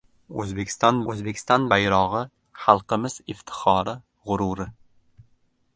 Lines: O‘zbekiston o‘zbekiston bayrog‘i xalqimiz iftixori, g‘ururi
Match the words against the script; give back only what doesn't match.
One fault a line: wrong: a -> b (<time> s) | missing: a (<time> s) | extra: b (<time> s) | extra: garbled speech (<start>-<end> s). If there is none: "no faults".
no faults